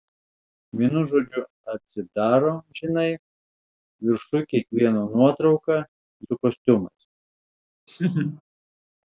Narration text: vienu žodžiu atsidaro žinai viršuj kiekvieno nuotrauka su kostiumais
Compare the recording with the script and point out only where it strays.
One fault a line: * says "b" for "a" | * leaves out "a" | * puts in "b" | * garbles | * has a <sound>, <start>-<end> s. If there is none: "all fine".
* has a laugh, 7.9-8.4 s